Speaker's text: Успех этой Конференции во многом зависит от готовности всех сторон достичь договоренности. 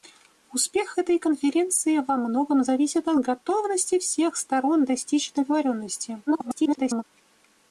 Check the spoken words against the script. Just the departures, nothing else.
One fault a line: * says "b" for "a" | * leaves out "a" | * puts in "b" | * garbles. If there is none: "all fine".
* garbles